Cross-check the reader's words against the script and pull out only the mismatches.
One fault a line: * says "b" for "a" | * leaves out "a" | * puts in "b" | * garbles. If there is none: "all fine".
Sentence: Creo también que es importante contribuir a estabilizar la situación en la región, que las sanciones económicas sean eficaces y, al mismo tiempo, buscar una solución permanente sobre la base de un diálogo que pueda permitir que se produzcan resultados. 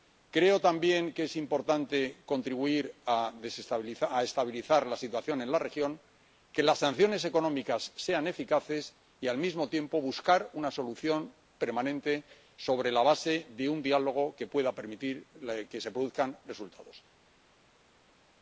all fine